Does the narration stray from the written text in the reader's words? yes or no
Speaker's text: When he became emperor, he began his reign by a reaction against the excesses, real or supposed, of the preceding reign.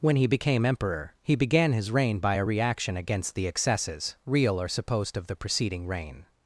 no